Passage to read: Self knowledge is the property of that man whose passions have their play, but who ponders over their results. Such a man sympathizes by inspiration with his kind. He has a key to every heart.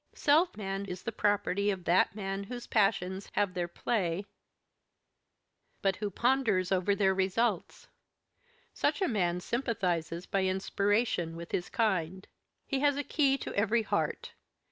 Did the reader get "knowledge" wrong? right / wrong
wrong